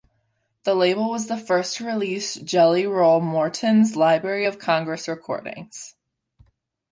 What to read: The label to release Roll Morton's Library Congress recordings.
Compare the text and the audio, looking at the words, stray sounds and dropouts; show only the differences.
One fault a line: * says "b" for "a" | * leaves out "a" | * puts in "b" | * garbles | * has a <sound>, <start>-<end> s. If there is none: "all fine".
* puts in "was the first"
* puts in "Jelly"
* puts in "of"